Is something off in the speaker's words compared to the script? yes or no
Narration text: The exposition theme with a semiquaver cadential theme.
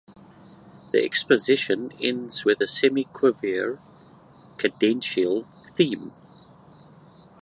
yes